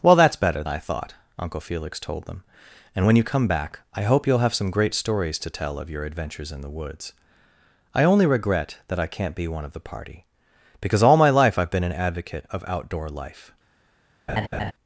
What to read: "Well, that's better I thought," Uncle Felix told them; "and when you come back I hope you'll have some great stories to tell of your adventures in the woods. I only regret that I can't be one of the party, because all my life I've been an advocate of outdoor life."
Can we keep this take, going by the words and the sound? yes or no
no